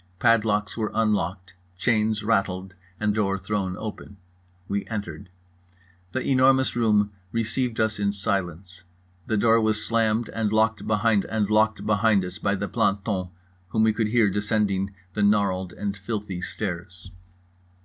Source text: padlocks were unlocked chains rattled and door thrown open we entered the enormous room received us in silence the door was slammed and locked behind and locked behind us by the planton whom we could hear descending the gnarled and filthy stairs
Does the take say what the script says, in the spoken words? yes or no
yes